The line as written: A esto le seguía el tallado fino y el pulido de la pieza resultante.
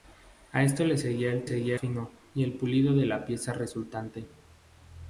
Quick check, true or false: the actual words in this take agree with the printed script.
false